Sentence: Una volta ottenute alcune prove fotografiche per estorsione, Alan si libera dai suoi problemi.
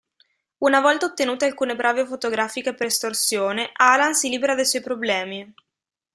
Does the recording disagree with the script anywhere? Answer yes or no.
no